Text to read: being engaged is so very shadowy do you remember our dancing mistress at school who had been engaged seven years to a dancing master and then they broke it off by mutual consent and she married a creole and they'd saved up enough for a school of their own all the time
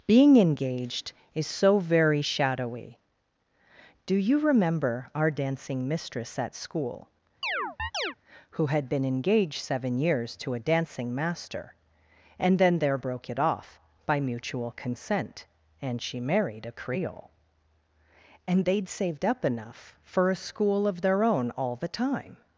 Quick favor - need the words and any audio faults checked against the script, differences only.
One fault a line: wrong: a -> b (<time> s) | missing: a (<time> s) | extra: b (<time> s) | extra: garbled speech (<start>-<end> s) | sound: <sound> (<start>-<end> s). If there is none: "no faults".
sound: chirp (7.4-8.2 s)
wrong: they -> there (12.8 s)